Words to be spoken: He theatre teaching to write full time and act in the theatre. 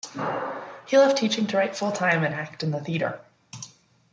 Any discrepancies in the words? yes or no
yes